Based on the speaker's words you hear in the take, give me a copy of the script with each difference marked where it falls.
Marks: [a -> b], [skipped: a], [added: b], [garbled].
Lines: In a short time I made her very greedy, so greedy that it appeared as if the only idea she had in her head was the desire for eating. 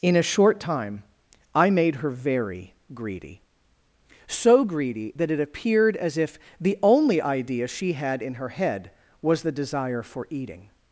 In a short time I made her very greedy, so greedy that it appeared as if the only idea she had in her head was the desire for eating.